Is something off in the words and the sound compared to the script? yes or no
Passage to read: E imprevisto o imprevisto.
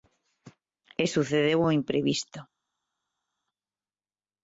yes